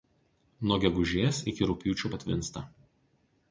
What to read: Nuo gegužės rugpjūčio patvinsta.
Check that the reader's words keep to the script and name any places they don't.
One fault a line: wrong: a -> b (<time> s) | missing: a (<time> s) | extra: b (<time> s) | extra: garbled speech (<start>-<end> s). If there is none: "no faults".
extra: iki (1.5 s)